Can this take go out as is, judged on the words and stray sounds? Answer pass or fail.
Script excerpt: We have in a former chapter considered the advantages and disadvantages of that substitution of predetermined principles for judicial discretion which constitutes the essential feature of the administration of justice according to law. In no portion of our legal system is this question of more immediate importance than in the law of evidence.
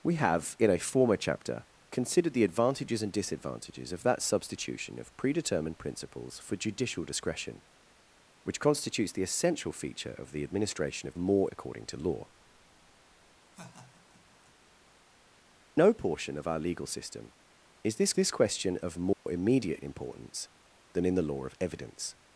fail